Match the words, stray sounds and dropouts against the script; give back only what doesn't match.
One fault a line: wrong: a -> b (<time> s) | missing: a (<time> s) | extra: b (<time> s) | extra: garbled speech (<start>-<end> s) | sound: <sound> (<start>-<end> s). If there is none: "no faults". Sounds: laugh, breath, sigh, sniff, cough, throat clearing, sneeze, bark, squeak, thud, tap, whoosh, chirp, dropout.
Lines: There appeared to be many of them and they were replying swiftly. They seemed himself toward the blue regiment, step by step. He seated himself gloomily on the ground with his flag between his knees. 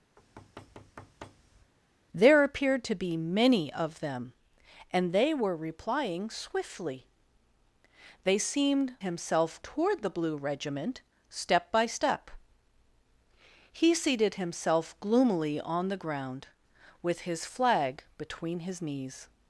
sound: thud (0.2-1.7 s)